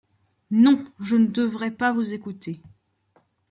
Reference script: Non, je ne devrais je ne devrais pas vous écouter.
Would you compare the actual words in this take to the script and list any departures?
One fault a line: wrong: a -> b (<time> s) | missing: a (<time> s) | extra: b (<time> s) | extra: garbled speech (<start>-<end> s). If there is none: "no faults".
missing: je ne devrais (1.7 s)